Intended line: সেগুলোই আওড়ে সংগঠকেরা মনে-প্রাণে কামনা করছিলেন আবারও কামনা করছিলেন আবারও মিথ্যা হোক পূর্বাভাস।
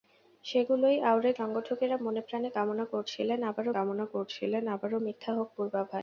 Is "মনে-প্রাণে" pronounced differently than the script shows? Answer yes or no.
no